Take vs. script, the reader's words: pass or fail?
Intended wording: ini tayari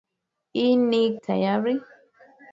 pass